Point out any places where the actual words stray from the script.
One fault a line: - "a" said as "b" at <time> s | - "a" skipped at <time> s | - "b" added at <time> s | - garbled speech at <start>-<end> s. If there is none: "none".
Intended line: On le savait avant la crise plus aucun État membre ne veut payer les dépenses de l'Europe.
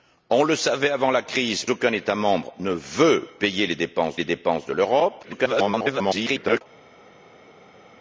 - "plus" skipped at 1.6 s
- "les dépenses" added at 4.1 s
- garbled speech at 5.2-6.6 s